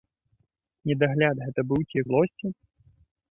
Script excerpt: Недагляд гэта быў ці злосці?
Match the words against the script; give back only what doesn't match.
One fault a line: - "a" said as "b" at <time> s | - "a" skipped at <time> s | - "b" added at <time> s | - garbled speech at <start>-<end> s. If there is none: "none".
none